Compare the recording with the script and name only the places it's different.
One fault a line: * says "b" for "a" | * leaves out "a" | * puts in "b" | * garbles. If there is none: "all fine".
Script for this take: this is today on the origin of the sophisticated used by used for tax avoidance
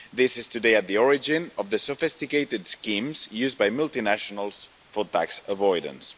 * says "at" for "on"
* puts in "schemes"
* says "multinationals" for "used"